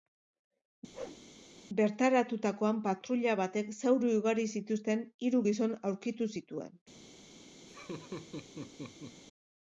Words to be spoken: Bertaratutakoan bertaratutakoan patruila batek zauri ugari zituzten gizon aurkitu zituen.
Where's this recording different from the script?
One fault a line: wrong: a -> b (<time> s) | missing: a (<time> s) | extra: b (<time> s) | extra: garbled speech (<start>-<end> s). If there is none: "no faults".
missing: bertaratutakoan (2.8 s)
extra: hiru (5.3 s)